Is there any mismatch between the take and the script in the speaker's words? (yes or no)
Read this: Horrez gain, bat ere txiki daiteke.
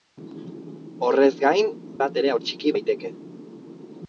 no